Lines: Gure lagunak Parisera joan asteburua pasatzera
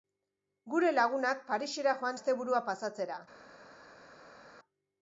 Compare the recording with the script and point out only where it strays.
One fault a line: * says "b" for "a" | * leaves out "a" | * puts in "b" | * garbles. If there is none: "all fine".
all fine